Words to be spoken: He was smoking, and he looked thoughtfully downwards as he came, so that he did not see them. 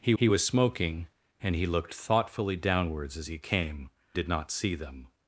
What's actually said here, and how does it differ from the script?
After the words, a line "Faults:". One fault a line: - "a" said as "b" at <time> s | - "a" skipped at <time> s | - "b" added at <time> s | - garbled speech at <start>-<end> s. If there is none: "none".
He he was smoking, and he looked thoughtfully downwards as he came, did not see them.
Faults:
- "he" added at 0.2 s
- "so that he" skipped at 3.9 s